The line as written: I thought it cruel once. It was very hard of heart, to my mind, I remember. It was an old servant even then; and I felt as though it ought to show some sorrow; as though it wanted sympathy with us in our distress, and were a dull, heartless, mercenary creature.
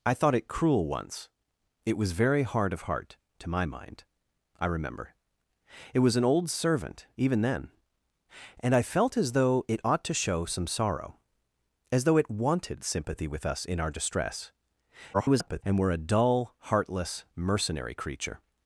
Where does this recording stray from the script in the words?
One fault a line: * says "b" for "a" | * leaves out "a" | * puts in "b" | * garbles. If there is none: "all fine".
* garbles